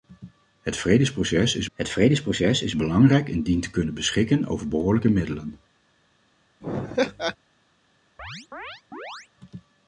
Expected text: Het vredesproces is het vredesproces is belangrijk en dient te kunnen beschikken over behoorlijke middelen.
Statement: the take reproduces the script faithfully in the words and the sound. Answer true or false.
false